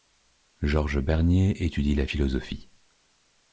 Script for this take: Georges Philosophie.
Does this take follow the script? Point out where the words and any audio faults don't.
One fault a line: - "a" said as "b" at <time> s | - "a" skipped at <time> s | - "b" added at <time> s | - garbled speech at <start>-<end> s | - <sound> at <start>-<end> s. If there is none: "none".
- "Bernier étudie la" added at 1.0 s